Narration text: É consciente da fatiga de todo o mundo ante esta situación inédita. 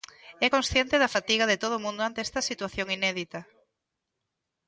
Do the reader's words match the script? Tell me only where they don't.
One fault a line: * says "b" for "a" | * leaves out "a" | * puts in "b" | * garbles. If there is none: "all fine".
all fine